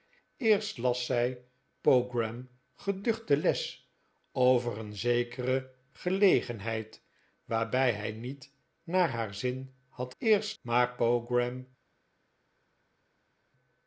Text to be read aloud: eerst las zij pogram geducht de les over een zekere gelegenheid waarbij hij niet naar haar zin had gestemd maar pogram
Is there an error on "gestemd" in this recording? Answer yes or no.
yes